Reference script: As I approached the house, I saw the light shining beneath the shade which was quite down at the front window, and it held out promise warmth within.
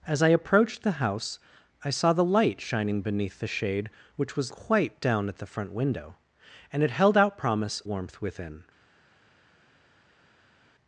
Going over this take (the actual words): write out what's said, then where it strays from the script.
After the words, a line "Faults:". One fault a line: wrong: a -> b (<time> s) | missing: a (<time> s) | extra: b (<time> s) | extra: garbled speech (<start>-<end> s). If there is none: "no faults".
As I approached the house, I saw the light shining beneath the shade which was quite down at the front window, and it held out promise warmth within.
Faults:
no faults